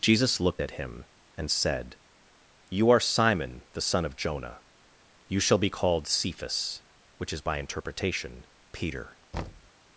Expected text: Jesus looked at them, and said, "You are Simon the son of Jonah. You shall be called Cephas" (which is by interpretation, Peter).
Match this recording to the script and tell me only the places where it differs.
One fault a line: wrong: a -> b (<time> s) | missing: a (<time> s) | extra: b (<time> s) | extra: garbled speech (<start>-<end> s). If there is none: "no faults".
wrong: them -> him (0.8 s)